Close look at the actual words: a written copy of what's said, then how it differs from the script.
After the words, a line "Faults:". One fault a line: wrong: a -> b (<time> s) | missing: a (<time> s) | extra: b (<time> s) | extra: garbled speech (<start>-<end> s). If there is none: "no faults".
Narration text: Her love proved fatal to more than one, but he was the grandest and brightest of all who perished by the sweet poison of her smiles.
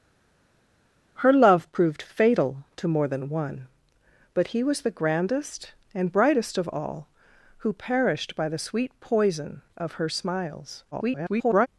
Her love proved fatal to more than one, but he was the grandest and brightest of all who perished by the sweet poison of her smiles. [garbled]
Faults:
extra: garbled speech (10.9-11.7 s)